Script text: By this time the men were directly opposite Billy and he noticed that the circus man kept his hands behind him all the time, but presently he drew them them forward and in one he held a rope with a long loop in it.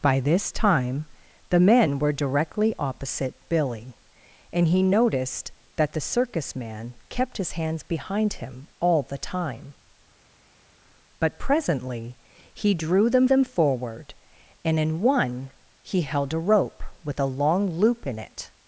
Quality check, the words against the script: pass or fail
pass